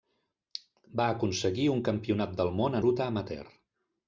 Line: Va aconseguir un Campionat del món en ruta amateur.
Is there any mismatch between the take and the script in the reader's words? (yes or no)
yes